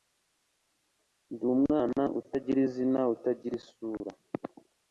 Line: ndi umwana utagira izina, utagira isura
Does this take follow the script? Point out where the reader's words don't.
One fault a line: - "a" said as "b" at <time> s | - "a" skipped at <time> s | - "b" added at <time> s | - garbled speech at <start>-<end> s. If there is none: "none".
none